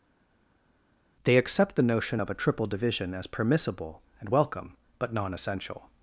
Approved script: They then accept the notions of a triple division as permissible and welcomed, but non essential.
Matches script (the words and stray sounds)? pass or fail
fail